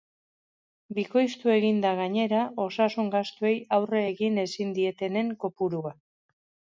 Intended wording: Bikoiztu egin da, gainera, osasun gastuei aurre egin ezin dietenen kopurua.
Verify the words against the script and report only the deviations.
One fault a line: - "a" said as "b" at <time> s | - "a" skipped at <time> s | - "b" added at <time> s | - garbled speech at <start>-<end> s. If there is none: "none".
none